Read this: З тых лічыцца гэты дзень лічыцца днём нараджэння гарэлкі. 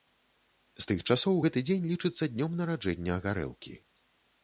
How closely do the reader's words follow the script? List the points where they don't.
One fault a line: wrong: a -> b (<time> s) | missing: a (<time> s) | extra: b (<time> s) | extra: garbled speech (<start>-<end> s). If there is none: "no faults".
wrong: лічыцца -> часоў (1.2 s)